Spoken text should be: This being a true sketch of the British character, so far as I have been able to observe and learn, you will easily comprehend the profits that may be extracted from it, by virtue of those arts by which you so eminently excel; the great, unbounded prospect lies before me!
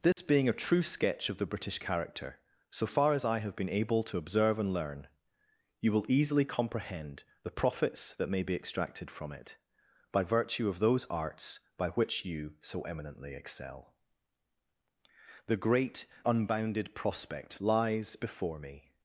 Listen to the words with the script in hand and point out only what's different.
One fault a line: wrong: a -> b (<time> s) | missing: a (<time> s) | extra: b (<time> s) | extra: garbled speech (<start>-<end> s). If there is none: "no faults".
no faults